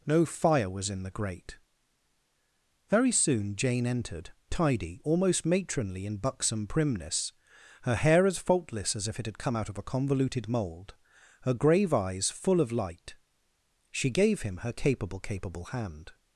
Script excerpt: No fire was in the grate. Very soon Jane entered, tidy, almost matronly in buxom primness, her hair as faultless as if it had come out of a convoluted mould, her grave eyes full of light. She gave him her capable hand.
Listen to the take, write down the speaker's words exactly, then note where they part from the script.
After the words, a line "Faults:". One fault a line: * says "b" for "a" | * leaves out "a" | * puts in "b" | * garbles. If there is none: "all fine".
No fire was in the grate. Very soon Jane entered, tidy, almost matronly in buxom primness, her hair as faultless as if it had come out of a convoluted mould, her grave eyes full of light. She gave him her capable capable hand.
Faults:
* puts in "capable"